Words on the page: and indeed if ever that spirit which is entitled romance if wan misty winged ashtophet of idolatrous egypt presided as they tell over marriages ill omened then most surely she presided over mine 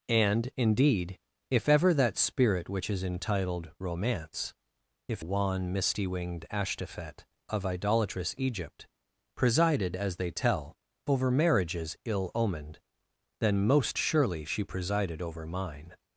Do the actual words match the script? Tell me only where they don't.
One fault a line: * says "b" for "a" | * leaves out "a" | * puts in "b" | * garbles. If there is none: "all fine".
all fine